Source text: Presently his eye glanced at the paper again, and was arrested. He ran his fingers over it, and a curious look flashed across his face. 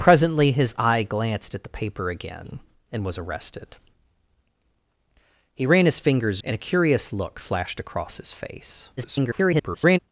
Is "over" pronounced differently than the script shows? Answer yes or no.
yes